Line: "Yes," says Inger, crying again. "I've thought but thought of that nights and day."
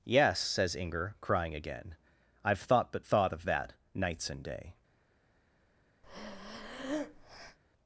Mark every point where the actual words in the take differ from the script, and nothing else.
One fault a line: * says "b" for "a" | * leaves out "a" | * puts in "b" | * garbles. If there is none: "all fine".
all fine